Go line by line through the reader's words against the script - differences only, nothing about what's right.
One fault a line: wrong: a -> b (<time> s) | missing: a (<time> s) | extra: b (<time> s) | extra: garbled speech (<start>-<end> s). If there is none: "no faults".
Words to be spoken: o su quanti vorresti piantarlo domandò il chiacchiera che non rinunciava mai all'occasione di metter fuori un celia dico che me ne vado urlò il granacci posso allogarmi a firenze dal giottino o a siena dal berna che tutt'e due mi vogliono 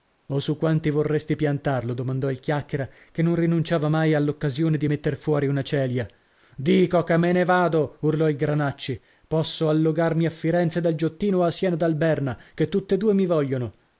wrong: un -> una (5.5 s)